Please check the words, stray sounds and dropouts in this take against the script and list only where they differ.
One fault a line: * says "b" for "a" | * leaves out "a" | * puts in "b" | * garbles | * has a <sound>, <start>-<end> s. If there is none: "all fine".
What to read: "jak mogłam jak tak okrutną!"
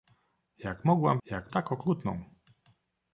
all fine